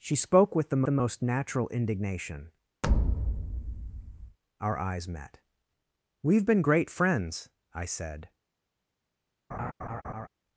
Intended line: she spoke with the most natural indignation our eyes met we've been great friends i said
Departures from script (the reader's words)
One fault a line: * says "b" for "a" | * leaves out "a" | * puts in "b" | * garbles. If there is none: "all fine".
* puts in "the"